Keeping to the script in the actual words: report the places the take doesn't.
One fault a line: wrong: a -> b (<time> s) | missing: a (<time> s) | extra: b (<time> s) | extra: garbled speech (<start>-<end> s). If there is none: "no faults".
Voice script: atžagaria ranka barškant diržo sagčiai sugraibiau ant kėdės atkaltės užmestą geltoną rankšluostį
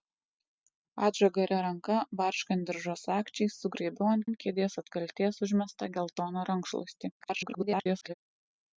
extra: ant (4.3 s)
extra: garbled speech (7.2-8.1 s)